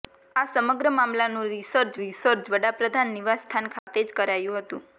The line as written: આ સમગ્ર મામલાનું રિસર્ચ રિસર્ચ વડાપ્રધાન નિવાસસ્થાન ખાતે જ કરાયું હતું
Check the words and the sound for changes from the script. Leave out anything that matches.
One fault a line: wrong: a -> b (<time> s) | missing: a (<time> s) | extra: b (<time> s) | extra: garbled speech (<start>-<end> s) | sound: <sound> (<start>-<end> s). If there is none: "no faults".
sound: dropout (3.8-3.9 s)